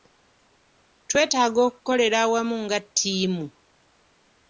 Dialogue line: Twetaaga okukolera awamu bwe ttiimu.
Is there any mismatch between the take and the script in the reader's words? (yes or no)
yes